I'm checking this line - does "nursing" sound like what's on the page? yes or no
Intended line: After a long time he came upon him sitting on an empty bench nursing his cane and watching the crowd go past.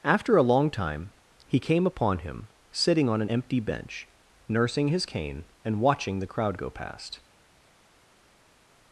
yes